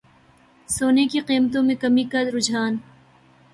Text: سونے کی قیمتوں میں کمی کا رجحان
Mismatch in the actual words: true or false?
false